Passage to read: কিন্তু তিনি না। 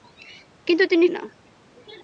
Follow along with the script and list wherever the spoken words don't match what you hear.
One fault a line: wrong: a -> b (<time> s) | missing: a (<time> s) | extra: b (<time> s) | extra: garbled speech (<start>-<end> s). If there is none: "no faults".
no faults